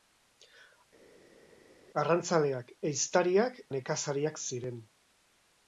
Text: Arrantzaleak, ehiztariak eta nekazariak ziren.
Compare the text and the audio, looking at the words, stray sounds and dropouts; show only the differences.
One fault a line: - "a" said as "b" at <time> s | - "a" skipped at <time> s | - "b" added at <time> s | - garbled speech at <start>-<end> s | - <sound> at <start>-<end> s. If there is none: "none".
- "eta" skipped at 3.6 s